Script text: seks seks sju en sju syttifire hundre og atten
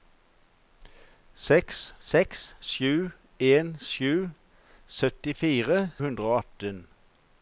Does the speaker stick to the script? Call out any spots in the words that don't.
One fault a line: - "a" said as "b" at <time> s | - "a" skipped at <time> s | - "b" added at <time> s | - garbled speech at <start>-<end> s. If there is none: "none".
none